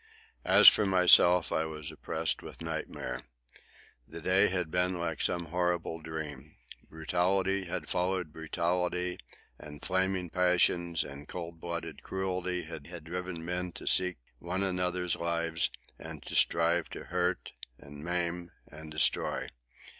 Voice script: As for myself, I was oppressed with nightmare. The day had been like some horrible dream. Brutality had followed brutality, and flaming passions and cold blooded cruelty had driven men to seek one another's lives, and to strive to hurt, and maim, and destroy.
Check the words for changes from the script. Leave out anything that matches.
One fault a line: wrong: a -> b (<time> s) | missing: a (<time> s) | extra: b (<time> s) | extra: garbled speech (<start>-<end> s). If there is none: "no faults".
extra: had (12.8 s)